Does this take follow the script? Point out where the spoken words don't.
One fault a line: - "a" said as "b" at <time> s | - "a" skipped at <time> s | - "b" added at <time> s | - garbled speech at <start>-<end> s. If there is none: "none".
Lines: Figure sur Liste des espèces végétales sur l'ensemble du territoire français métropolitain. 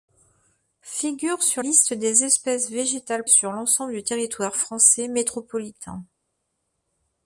none